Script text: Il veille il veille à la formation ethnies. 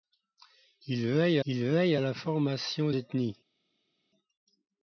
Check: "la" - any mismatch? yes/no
no